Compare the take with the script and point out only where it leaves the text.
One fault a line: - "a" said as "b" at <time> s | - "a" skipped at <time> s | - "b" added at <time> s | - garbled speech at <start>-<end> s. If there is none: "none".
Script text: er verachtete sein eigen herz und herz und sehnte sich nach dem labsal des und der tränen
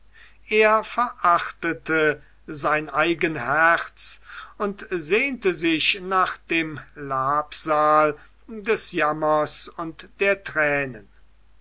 - "herz und" skipped at 4.8 s
- "jammers" added at 8.9 s